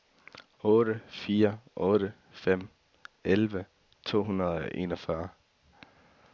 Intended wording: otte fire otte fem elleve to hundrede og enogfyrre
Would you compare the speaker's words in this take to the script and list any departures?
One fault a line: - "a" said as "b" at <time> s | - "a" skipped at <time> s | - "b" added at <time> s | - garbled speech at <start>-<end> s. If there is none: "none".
none